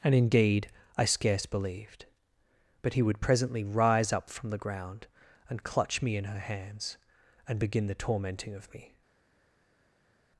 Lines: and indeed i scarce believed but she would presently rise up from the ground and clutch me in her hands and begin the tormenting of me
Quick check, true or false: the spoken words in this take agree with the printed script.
false